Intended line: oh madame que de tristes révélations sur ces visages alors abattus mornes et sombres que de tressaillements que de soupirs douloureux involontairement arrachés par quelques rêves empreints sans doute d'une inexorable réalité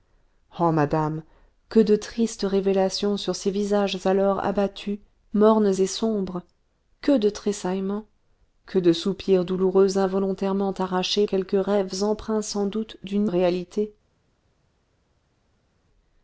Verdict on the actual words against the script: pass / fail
fail